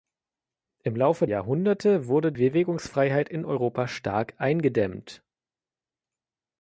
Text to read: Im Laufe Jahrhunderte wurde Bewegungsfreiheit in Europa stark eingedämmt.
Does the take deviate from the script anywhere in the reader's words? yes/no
no